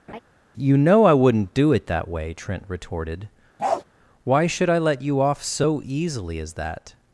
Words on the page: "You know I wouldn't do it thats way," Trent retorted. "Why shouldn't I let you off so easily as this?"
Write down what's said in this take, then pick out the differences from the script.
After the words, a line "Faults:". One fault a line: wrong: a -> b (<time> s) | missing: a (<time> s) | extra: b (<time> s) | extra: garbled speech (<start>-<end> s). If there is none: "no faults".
"You know I wouldn't do it that way," Trent retorted. "Why should I let you off so easily as that?"
Faults:
wrong: thats -> that (1.9 s)
wrong: shouldn't -> should (4.5 s)
wrong: this -> that (6.5 s)